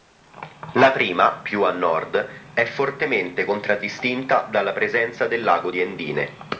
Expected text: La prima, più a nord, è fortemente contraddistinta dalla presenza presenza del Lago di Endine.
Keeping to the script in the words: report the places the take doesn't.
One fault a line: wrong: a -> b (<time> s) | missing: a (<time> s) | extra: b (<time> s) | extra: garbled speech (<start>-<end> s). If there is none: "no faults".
missing: presenza (5.3 s)